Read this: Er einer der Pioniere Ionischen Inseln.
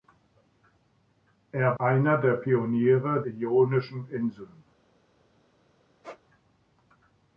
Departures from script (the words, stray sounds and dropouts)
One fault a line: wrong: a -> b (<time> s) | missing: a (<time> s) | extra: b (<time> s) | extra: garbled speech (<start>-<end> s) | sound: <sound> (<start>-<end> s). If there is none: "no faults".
sound: squeak (6.0-6.2 s)